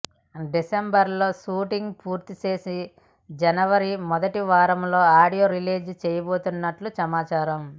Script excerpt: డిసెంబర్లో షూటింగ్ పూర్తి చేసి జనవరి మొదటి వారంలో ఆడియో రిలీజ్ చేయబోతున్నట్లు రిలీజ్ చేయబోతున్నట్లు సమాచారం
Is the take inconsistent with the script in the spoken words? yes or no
yes